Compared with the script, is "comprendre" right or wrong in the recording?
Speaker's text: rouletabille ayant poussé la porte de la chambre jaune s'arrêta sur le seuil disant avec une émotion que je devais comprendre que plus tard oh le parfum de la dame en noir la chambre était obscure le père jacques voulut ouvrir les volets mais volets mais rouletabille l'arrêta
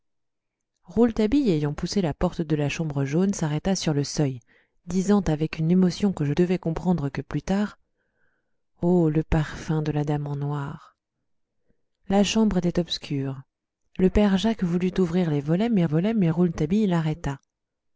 right